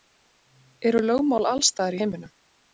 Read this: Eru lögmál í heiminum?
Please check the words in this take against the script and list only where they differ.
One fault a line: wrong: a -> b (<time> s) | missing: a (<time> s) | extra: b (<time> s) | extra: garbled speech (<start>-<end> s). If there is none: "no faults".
extra: alls staðar (1.5 s)